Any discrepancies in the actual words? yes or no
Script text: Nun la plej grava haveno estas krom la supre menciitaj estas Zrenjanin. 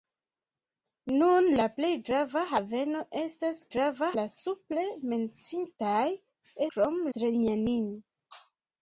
yes